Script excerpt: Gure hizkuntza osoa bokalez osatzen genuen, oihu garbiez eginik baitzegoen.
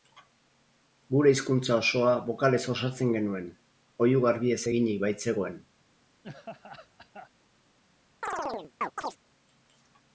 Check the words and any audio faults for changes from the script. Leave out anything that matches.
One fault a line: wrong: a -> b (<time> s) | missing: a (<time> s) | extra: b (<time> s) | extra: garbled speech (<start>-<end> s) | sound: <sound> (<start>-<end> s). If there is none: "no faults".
sound: laugh (6.2-7.3 s)
sound: chirp (8.2-9.2 s)